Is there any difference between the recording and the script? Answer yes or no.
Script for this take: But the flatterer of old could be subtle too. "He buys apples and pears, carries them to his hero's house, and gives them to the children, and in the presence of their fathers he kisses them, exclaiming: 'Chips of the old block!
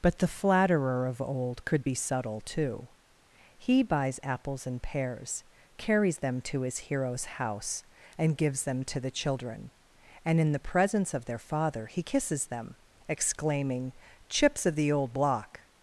yes